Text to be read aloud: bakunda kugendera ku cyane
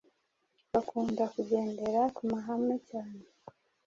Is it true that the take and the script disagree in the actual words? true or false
true